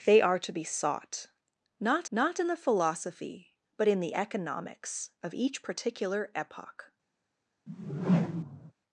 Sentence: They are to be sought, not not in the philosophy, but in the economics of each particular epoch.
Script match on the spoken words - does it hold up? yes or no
yes